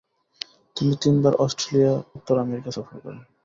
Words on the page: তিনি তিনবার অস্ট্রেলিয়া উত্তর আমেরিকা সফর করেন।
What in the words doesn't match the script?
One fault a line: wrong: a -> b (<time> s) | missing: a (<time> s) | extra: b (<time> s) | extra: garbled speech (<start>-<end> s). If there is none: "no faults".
no faults